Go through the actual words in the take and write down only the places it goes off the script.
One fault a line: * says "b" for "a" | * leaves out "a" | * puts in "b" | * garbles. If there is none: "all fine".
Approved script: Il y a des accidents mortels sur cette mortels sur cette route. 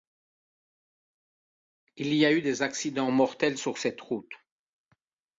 * puts in "eu"
* leaves out "mortels sur cette"